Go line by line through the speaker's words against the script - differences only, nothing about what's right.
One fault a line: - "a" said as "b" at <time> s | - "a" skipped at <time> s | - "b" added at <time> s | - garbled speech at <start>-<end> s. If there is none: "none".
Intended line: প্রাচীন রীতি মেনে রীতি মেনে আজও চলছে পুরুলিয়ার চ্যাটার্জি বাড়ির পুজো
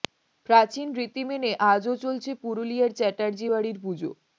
- "রীতি মেনে" skipped at 1.5 s